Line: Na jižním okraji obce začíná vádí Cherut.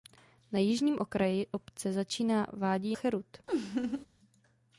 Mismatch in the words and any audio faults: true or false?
true